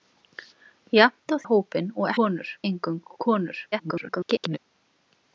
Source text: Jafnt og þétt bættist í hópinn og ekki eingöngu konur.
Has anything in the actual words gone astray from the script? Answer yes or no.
yes